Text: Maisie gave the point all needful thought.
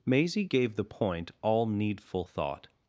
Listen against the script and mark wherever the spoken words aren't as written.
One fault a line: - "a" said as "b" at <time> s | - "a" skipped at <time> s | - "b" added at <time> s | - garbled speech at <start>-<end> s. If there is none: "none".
none